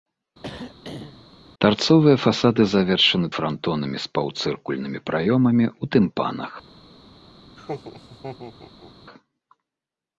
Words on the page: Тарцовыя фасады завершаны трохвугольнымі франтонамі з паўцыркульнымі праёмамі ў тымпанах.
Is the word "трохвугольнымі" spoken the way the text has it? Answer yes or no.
no